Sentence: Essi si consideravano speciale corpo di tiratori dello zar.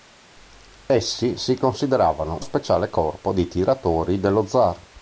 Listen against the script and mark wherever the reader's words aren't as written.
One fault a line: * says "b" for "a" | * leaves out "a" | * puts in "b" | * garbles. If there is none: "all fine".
all fine